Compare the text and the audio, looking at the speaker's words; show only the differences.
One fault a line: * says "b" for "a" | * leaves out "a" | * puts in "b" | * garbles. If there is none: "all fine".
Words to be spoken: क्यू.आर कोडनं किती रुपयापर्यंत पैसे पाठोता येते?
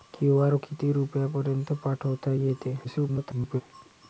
* leaves out "कोडनं"
* leaves out "पैसे"
* garbles